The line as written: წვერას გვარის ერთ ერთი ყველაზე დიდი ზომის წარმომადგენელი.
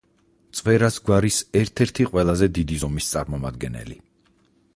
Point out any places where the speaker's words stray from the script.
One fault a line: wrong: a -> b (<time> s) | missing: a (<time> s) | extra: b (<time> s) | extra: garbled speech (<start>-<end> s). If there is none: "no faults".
no faults